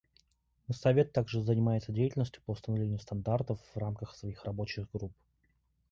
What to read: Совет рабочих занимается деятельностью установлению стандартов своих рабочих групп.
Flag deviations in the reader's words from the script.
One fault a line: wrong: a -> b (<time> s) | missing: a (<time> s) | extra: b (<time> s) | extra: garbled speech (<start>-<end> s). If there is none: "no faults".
wrong: рабочих -> также (1.1 s)
extra: по (2.4 s)
extra: в рамках (3.6 s)